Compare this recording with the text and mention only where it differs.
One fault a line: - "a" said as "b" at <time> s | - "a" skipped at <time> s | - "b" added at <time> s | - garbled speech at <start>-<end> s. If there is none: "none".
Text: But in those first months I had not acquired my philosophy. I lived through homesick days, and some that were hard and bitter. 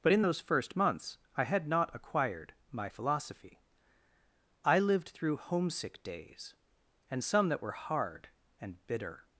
none